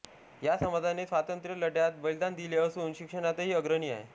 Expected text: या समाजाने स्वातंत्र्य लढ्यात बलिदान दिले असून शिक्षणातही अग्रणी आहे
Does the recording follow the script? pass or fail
pass